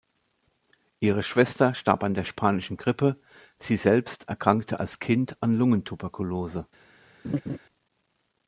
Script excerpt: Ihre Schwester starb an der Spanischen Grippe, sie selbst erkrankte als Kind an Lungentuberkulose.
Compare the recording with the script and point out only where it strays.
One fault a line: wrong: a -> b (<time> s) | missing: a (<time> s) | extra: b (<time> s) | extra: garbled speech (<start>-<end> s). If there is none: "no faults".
no faults